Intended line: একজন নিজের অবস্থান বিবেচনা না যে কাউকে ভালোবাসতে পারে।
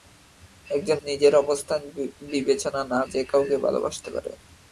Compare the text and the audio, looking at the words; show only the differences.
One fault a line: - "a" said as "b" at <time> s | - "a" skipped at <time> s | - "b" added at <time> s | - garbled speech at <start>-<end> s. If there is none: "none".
none